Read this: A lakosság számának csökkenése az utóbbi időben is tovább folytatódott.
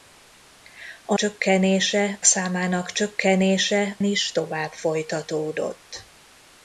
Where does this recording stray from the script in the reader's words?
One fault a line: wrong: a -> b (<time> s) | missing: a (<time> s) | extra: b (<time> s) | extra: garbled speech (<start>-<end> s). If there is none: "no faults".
wrong: lakosság -> csökkenése (1.1 s)
missing: az utóbbi időben (4.0 s)